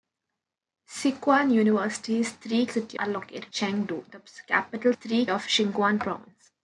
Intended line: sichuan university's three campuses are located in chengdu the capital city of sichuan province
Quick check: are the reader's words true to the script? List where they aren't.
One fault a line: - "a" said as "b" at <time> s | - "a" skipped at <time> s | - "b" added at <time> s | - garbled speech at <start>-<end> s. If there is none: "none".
- "campuses" said as "city" at 2.6 s
- "in" skipped at 3.5 s
- "city" said as "three" at 4.9 s